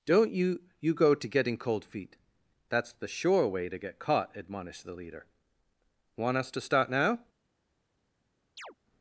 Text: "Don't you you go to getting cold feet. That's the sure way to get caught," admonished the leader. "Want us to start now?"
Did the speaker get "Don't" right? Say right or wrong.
right